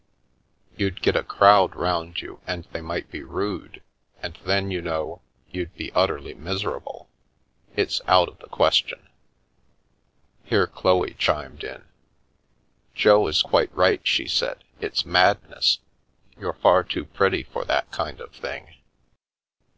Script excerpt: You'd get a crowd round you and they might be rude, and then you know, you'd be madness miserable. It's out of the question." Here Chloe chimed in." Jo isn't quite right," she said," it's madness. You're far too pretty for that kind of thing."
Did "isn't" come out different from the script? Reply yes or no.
yes